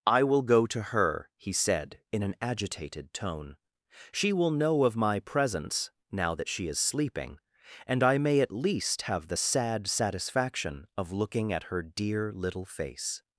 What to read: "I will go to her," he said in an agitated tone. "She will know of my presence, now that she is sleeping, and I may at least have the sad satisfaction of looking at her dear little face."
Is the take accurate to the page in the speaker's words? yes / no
yes